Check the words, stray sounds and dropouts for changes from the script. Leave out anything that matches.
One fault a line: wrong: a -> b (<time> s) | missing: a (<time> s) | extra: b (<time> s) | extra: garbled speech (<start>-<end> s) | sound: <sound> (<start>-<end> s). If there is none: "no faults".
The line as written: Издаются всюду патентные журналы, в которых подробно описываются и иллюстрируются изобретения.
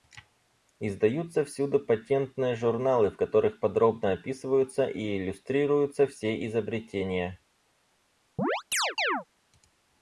extra: все (6.1 s)
sound: chirp (8.4-9.2 s)